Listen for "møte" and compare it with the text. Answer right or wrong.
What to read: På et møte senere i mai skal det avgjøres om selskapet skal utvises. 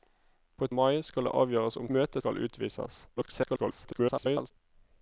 wrong